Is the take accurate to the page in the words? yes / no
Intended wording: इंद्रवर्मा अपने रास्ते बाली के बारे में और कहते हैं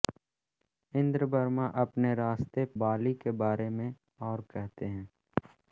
yes